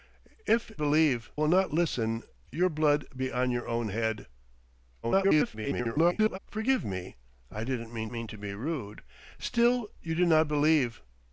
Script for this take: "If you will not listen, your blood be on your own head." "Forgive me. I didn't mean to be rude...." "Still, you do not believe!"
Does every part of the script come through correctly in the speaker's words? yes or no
no